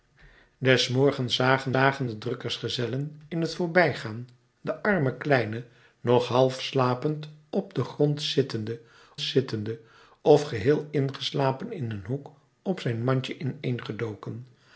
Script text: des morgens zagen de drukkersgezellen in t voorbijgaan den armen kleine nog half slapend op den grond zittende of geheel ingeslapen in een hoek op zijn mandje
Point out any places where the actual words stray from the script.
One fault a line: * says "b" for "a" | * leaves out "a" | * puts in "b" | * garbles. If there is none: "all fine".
* puts in "zagen"
* puts in "zittende"